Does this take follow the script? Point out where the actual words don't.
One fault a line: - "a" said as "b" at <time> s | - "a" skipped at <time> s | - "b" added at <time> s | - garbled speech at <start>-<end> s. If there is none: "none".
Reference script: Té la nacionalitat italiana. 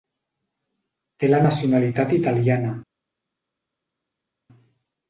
none